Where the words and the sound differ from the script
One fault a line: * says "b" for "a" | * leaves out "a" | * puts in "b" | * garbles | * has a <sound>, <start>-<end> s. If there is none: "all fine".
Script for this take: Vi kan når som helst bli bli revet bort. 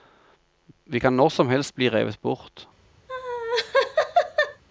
* leaves out "bli"
* has a laugh, 3.1-4.6 s